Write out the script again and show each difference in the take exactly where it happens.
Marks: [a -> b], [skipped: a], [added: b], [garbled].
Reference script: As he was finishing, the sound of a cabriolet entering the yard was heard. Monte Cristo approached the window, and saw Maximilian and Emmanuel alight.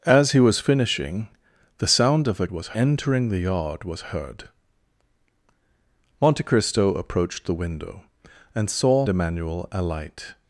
As he was finishing, the sound of a [cabriolet -> was] entering the yard was heard. Monte Cristo approached the window, and saw [skipped: Maximilian and] Emmanuel alight.